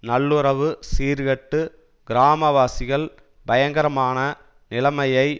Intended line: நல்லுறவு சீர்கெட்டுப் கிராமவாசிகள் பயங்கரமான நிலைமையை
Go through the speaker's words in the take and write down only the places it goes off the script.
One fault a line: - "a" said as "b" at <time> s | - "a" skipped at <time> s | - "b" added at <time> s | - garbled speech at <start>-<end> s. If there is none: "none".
none